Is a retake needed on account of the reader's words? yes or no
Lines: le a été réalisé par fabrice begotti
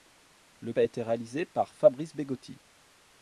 no